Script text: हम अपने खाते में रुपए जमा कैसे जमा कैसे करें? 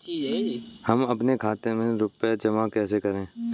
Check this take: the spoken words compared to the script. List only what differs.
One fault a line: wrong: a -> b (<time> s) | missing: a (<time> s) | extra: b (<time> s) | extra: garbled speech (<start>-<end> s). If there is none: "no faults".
missing: जमा कैसे (3.0 s)